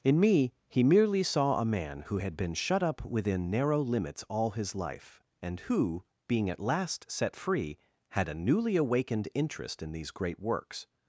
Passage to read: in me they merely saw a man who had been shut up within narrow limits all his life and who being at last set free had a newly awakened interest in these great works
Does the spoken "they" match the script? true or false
false